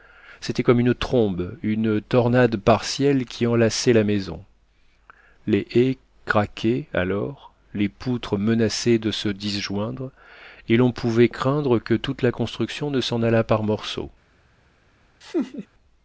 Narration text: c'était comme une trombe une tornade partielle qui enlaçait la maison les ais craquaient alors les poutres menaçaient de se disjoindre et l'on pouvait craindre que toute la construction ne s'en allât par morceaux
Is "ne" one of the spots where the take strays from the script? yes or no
no